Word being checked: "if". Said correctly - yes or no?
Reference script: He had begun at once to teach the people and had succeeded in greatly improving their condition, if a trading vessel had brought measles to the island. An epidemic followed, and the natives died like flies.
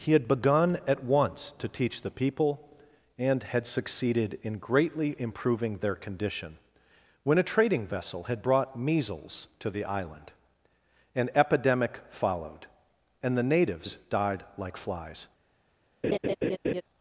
no